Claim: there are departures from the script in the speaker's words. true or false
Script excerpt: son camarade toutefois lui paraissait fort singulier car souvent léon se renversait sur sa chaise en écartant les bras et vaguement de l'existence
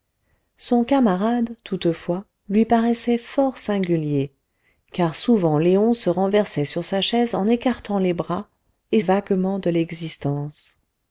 false